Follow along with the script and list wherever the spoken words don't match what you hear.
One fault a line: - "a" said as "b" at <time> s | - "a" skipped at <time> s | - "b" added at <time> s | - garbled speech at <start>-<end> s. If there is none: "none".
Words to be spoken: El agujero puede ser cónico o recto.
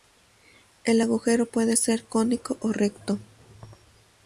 none